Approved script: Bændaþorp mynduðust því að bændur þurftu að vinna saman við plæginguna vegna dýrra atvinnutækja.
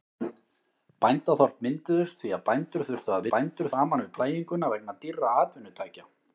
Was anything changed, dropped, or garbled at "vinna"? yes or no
yes